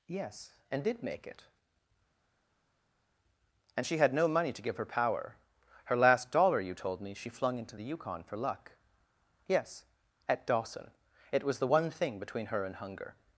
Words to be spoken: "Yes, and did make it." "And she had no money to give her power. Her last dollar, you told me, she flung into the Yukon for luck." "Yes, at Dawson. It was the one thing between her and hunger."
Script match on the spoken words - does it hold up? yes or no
yes